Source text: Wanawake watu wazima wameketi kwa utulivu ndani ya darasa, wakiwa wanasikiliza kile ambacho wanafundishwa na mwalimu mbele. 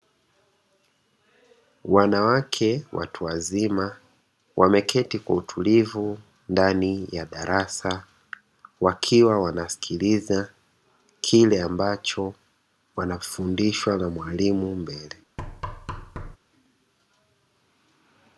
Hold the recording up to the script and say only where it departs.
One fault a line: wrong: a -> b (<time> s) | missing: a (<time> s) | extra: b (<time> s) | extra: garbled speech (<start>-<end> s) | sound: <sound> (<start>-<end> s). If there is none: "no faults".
sound: thud (15.4-16.4 s)